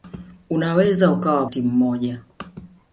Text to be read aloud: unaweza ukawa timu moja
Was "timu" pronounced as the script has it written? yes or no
yes